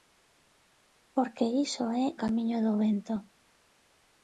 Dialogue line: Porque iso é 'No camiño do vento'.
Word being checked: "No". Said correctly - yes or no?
no